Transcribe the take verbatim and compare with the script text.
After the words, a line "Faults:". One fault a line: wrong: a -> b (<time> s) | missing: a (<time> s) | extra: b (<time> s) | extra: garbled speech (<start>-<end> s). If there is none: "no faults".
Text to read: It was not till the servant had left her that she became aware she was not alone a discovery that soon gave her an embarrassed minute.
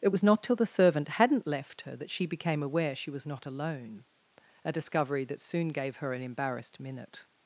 It was not till the servant hadn't left her that she became aware she was not alone a discovery that soon gave her an embarrassed minute.
Faults:
wrong: had -> hadn't (1.1 s)